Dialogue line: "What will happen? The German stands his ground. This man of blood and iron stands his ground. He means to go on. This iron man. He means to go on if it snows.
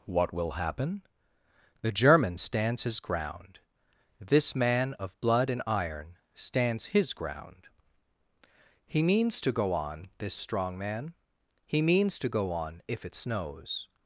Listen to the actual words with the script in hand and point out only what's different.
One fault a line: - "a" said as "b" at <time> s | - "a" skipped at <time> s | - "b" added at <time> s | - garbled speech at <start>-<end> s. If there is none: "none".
- "iron" said as "strong" at 10.3 s